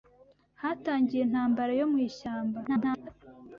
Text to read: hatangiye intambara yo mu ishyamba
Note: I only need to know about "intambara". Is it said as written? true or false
true